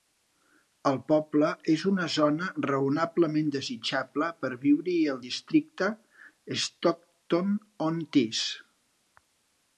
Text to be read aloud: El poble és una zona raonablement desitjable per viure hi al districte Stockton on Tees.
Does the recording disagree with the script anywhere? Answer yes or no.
no